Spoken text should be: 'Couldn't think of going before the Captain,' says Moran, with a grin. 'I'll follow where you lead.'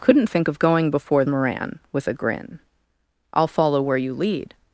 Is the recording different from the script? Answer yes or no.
yes